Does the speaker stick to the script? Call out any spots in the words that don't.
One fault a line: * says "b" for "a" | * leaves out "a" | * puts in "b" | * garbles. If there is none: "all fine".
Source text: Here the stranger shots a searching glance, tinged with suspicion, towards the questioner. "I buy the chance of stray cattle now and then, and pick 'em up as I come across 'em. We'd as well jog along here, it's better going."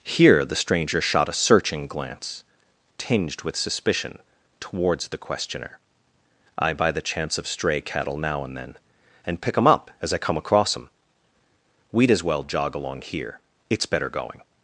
* says "shot" for "shots"